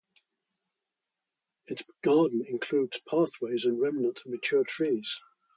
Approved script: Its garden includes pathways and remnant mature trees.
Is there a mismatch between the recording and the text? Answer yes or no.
no